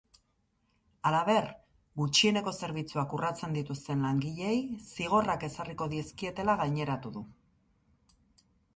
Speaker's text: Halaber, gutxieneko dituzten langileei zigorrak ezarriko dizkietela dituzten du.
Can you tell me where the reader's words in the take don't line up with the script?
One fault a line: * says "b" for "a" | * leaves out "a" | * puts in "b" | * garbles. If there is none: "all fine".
* puts in "zerbitzuak urratzen"
* says "gaineratu" for "dituzten"